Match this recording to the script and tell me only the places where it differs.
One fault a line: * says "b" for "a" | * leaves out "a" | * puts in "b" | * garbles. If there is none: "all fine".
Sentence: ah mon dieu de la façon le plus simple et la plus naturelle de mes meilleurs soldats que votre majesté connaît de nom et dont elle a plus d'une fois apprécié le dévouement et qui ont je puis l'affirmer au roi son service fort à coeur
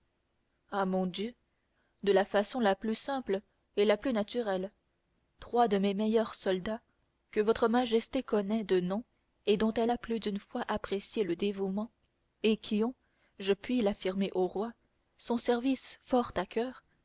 * says "la" for "le"
* puts in "trois"